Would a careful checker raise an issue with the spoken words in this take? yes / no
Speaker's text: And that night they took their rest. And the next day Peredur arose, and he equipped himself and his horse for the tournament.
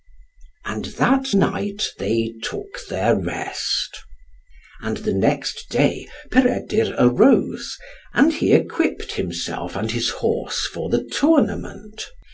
no